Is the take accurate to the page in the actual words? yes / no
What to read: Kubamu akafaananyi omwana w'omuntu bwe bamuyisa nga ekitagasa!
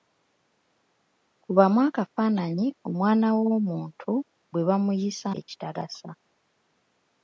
no